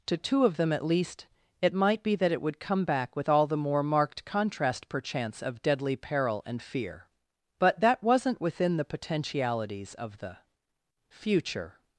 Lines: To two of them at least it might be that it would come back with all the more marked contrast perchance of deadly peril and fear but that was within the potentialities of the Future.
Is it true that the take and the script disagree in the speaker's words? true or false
true